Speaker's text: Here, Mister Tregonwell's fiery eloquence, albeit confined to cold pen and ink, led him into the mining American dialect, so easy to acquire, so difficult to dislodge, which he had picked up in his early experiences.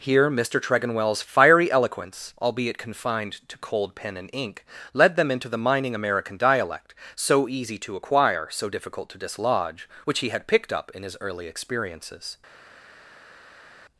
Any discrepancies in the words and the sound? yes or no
yes